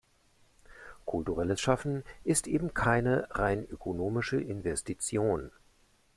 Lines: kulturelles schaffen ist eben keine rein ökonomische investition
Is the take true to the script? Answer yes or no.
yes